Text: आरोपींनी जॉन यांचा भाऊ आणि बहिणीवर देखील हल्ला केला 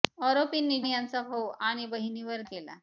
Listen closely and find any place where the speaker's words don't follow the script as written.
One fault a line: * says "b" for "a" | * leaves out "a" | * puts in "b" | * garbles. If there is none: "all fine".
* leaves out "जॉन"
* leaves out "देखील हल्ला"